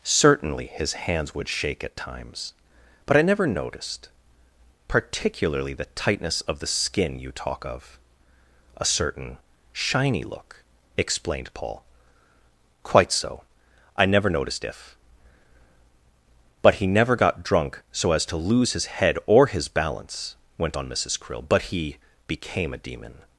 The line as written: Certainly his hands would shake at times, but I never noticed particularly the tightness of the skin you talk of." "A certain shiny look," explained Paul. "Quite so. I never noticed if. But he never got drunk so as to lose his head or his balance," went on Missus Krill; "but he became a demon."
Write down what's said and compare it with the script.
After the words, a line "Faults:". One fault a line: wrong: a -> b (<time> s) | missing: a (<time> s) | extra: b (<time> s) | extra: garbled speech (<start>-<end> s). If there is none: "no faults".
Certainly his hands would shake at times, but I never noticed particularly the tightness of the skin you talk of." "A certain shiny look," explained Paul. "Quite so. I never noticed if. But he never got drunk so as to lose his head or his balance," went on Missus Krill; "but he became a demon."
Faults:
no faults